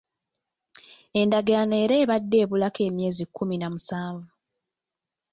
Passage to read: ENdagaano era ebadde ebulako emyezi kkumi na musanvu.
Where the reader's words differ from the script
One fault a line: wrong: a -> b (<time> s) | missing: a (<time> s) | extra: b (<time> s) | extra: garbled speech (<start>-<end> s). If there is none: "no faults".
no faults